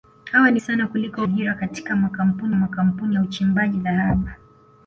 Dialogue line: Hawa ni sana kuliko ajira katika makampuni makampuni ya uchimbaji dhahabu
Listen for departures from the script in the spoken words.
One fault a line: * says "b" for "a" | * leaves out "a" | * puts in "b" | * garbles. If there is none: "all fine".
all fine